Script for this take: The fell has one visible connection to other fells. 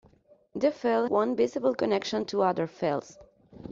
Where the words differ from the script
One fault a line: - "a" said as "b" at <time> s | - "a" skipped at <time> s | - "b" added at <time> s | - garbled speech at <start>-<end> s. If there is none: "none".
- "has" skipped at 1.1 s